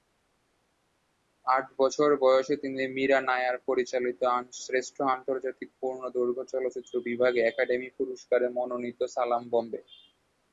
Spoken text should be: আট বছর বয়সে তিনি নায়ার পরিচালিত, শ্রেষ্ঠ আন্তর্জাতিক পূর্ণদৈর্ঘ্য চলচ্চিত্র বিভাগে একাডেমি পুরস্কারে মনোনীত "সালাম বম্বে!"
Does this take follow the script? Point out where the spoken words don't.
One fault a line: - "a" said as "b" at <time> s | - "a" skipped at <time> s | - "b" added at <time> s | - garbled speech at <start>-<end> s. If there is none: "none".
- "মীরা" added at 3.0 s